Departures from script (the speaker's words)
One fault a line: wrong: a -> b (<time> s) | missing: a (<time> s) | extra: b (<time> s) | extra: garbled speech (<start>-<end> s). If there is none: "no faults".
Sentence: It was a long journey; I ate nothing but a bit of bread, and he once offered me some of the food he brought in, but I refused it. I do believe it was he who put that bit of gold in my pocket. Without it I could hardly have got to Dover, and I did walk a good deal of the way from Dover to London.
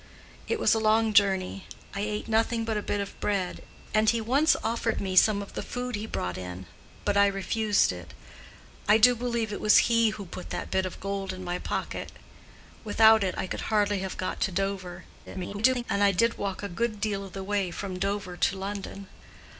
extra: garbled speech (15.3-15.8 s)